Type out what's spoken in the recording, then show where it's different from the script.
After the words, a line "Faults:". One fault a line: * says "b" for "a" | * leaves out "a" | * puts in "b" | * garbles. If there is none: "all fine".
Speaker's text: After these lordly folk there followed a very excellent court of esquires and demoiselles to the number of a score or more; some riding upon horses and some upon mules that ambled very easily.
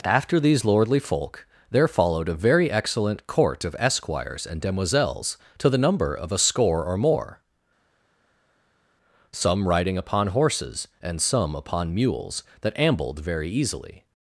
After these lordly folk there followed a very excellent court of esquires and demoiselles to the number of a score or more; some riding upon horses and some upon mules that ambled very easily.
Faults:
all fine